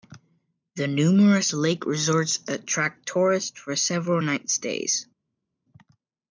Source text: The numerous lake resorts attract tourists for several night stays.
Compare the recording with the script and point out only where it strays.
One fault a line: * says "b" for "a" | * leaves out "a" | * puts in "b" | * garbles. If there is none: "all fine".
all fine